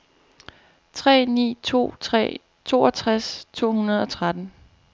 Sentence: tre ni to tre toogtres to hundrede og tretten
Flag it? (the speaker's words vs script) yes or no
no